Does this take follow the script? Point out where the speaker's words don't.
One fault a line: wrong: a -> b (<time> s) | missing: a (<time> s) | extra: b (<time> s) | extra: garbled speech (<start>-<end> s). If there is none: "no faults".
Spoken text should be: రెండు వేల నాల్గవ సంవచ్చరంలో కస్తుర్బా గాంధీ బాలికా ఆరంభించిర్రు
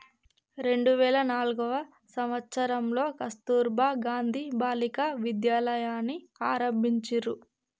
extra: విద్యాలయని (5.2 s)